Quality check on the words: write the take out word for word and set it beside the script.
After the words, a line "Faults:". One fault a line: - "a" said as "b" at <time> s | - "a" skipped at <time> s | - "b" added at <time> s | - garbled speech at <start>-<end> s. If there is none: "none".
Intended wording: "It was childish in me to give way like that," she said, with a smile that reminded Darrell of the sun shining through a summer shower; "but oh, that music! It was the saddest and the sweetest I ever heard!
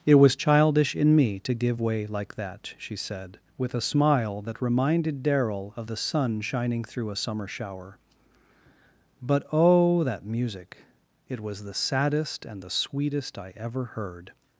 "It was childish in me to give way like that," she said, with a smile that reminded Darrell of the sun shining through a summer shower; "but oh, that music! It was the saddest and the sweetest I ever heard!
Faults:
none